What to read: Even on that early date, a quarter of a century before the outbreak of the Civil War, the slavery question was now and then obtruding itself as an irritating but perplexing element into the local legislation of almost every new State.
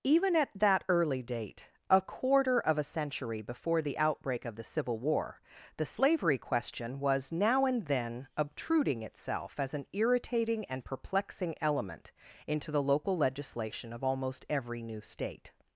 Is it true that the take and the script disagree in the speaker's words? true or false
true